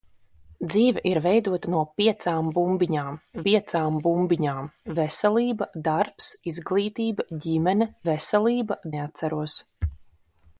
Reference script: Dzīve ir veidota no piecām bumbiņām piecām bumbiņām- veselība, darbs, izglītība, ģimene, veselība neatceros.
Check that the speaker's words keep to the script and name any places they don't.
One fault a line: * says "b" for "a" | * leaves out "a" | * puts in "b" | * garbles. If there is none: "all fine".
all fine